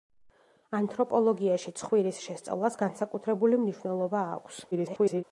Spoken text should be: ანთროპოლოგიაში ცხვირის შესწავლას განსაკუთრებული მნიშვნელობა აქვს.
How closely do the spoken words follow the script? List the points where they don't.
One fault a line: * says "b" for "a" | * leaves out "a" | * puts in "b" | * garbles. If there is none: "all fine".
* garbles